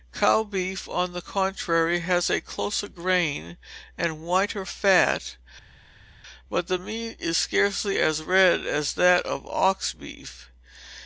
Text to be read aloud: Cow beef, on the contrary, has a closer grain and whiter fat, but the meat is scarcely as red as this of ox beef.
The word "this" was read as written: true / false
false